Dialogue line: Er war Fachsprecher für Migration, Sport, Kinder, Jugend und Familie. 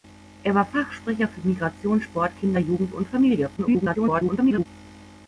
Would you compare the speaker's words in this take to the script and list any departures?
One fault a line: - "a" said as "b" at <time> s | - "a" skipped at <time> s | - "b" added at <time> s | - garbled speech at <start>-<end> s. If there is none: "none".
- garbled speech at 3.6-4.7 s